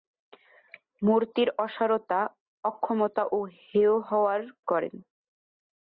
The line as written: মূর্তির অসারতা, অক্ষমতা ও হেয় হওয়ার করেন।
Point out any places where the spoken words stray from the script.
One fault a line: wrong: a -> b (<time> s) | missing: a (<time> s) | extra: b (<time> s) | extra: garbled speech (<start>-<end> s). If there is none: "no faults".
no faults